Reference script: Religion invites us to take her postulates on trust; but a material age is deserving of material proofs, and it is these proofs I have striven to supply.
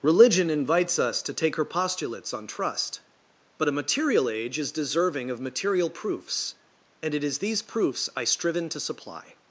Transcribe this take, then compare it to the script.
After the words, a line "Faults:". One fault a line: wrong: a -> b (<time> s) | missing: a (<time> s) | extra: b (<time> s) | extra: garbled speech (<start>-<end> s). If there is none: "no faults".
Religion invites us to take her postulates on trust; but a material age is deserving of material proofs, and it is these proofs I striven to supply.
Faults:
missing: have (8.2 s)